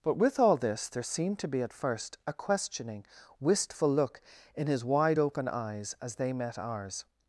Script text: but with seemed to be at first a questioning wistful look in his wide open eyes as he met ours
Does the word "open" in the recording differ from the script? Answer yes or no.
no